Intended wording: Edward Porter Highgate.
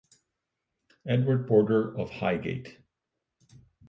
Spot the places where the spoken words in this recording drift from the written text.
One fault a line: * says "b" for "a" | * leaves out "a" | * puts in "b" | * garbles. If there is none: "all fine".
* puts in "of"